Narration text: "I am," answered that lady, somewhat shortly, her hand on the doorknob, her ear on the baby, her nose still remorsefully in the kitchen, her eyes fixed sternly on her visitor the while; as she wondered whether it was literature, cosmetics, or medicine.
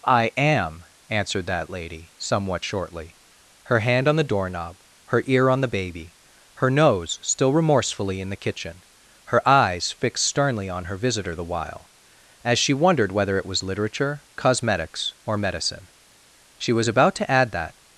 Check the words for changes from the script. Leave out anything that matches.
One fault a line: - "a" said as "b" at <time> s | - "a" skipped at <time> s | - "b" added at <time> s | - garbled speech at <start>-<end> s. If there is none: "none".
- "She was about to add that" added at 16.6 s